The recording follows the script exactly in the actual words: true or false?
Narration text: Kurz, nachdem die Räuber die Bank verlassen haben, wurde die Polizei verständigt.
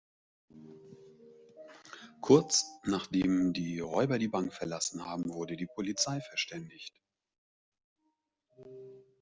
true